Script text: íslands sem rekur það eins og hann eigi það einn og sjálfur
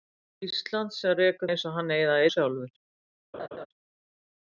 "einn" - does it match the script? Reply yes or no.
no